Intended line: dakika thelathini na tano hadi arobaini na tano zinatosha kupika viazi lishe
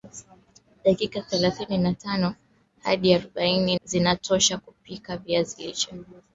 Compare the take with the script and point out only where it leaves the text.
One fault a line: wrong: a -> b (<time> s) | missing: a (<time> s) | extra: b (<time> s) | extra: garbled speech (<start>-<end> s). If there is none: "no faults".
missing: na tano (3.8 s)